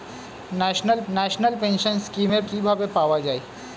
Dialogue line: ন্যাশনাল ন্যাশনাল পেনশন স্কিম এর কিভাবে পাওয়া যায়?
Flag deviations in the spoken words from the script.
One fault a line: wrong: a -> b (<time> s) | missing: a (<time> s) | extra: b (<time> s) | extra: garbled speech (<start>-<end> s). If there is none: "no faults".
no faults